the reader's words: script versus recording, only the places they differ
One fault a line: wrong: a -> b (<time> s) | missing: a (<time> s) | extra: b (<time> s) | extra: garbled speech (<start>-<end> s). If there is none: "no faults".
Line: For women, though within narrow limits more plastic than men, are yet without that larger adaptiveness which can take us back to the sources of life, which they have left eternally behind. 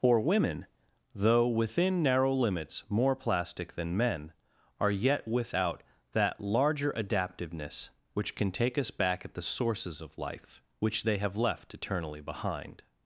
wrong: to -> at (9.2 s)